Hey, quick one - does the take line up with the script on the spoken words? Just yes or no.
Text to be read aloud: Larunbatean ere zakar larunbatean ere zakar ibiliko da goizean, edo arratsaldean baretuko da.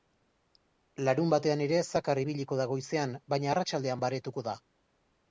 no